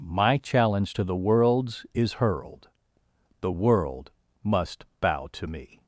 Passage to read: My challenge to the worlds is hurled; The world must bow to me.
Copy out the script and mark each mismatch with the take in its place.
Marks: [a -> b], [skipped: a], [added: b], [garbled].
My challenge to the worlds is hurled; The world must bow to me.